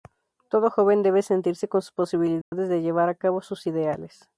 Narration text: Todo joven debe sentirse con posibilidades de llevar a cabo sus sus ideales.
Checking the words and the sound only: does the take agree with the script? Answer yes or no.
no